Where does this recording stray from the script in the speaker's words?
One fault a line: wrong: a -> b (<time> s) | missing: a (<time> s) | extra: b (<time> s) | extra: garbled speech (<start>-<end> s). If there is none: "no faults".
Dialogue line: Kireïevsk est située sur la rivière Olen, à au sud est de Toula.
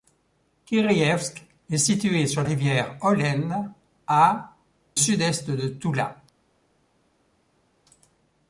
missing: la (2.4 s)
missing: au (4.5 s)